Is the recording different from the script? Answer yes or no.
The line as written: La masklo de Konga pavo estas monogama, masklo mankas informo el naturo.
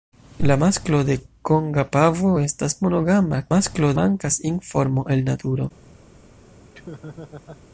no